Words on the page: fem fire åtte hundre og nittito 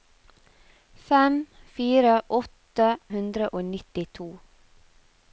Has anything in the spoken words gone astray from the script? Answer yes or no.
no